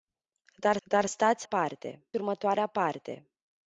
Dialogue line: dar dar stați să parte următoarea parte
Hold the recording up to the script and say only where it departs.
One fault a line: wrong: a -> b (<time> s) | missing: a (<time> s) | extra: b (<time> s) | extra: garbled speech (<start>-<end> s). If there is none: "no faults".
no faults